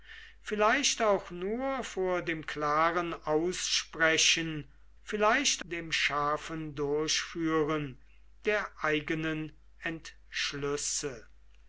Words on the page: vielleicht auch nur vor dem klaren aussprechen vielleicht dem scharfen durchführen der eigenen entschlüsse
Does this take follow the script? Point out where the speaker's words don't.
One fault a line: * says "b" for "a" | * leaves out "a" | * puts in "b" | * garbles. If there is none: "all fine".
all fine